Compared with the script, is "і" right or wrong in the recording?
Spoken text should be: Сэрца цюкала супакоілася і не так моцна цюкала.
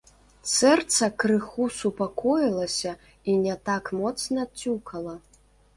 right